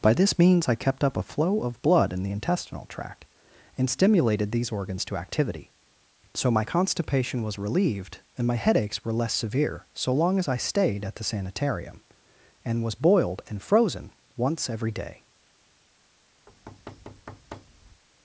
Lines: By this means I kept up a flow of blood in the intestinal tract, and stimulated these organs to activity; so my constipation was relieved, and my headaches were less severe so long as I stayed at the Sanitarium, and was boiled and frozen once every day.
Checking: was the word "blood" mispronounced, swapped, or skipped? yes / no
no